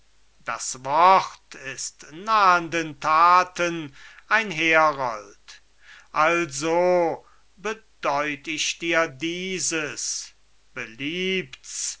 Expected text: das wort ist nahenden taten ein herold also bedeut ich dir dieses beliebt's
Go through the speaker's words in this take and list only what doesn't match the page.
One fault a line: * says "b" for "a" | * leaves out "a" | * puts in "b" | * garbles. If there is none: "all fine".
all fine